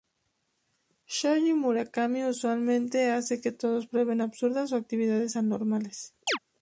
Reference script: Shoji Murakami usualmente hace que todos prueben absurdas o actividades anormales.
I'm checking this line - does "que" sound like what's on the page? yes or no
yes